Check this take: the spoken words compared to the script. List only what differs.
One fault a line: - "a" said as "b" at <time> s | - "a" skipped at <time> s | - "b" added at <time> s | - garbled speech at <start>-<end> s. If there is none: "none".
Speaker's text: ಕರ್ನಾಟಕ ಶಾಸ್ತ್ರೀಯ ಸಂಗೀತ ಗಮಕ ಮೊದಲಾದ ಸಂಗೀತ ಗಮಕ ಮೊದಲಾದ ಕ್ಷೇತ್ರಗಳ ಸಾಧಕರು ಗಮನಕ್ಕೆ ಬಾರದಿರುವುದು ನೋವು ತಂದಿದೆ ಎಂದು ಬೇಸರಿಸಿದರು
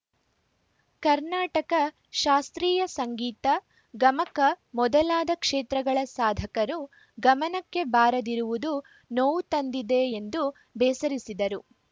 - "ಸಂಗೀತ ಗಮಕ ಮೊದಲಾದ" skipped at 5.3 s